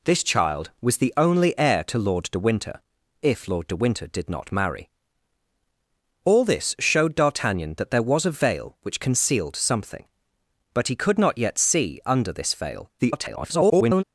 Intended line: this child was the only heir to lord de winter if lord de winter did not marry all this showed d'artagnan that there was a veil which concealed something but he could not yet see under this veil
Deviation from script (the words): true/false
true